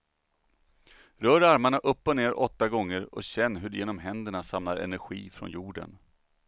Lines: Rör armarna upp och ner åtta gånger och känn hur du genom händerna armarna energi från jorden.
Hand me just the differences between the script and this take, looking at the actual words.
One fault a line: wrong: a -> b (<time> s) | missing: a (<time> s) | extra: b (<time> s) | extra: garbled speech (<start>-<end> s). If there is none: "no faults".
wrong: armarna -> samlar (4.4 s)